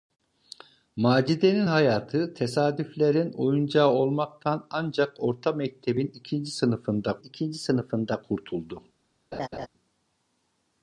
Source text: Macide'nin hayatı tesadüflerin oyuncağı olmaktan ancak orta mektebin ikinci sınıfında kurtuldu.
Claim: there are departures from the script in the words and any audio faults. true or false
true